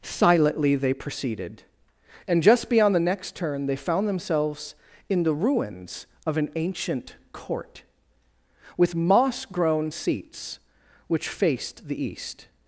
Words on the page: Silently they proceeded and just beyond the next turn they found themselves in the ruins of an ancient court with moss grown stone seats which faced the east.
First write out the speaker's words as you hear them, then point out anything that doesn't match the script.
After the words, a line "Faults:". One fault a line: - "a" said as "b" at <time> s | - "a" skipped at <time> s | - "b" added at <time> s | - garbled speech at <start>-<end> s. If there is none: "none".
Silently they proceeded and just beyond the next turn they found themselves in the ruins of an ancient court with moss grown seats which faced the east.
Faults:
- "stone" skipped at 9.9 s